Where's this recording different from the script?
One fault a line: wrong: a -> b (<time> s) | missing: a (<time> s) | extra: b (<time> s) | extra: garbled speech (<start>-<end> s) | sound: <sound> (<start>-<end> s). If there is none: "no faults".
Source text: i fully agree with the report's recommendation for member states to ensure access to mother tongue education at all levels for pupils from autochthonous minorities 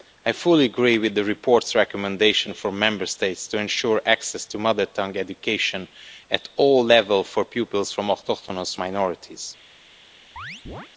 sound: chirp (10.4-10.9 s)